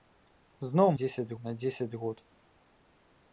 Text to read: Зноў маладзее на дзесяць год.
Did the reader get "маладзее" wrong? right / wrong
wrong